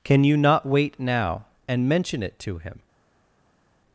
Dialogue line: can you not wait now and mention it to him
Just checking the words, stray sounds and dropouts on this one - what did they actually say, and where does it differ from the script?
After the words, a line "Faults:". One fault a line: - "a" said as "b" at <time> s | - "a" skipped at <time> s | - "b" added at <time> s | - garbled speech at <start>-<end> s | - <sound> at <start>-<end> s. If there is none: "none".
can you not wait now and mention it to him
Faults:
none